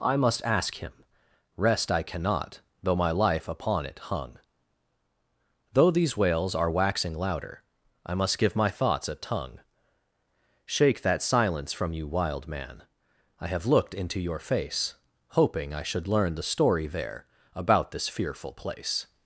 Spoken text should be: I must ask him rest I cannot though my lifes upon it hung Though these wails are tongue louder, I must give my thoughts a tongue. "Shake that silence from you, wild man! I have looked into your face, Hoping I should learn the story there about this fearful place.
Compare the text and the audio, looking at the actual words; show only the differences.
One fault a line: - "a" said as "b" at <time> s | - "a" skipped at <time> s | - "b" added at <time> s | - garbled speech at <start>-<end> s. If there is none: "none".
- "lifes" said as "life" at 3.1 s
- "tongue" said as "waxing" at 6.7 s